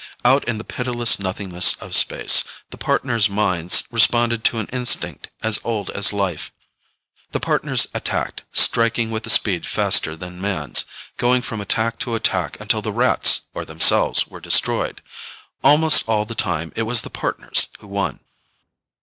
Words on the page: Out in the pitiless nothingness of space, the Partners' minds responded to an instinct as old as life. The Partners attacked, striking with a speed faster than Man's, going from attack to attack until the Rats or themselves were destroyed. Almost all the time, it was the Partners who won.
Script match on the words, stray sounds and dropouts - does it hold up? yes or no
yes